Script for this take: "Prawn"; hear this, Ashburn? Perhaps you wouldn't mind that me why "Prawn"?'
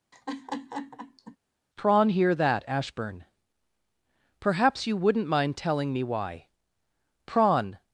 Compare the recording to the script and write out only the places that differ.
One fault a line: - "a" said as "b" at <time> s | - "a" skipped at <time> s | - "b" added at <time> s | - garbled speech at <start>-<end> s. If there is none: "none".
- "this" said as "that" at 2.3 s
- "that" said as "telling" at 5.6 s